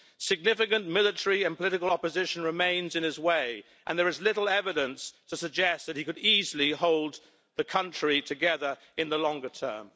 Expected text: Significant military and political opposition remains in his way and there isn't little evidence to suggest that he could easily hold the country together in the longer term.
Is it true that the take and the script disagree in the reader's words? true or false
true